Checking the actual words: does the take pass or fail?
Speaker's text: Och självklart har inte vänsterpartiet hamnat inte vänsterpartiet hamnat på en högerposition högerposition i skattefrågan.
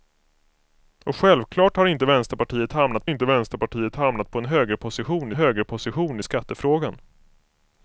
pass